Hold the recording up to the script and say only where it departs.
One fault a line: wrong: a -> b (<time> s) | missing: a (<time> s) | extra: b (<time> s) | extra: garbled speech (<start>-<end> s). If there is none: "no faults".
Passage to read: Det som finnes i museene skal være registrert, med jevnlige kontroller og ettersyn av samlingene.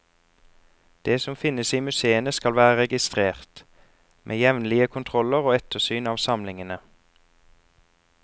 no faults